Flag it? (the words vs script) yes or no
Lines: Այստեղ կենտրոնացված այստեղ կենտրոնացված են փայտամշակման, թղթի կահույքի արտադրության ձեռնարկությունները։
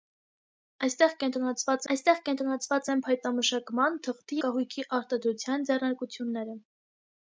no